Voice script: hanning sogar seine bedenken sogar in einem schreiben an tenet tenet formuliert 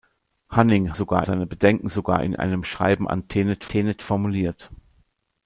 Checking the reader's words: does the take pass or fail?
pass